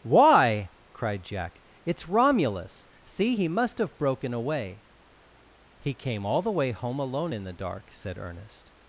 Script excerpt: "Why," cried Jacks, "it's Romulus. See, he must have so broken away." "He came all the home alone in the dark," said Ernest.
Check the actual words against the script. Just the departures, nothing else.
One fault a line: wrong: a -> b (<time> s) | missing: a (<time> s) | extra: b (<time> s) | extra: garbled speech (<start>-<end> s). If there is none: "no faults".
wrong: Jacks -> Jack (1.2 s)
missing: so (4.0 s)
extra: way (6.5 s)